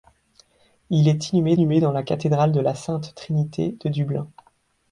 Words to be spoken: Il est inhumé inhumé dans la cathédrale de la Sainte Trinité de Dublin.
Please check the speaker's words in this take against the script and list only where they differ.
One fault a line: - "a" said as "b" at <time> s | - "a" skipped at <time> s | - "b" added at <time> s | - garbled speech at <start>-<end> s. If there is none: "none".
none